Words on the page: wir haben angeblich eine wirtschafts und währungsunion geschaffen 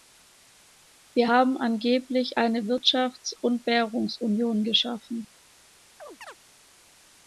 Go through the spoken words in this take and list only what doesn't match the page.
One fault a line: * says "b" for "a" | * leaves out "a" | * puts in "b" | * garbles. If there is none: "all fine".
all fine